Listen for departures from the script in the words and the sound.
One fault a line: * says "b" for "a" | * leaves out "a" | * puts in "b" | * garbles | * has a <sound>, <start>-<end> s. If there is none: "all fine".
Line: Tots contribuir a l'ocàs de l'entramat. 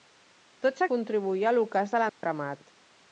* has a dropout, 2.1-2.2 s